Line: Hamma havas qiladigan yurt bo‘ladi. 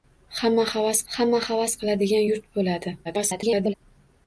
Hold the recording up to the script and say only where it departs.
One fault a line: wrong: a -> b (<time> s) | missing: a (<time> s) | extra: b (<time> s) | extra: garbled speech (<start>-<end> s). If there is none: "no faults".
extra: hamma havas (1.1 s)
extra: garbled speech (3.0-3.7 s)